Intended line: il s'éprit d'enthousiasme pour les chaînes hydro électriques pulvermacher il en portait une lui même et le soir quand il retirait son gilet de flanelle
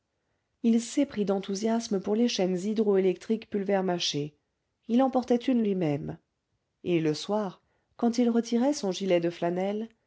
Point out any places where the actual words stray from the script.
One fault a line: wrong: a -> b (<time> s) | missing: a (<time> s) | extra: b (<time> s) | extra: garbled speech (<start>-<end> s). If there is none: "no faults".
no faults